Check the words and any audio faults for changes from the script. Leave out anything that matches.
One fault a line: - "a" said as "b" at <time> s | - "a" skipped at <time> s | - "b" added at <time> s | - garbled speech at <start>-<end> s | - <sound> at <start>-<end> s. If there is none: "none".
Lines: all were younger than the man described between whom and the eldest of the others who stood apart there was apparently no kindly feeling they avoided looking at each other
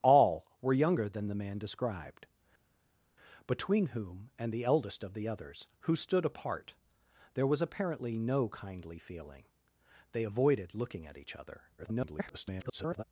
- garbled speech at 11.8-13.0 s